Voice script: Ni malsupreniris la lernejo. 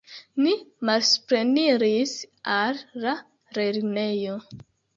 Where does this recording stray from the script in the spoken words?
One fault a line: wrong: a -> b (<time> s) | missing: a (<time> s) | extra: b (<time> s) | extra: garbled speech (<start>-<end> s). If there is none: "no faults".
extra: al (2.5 s)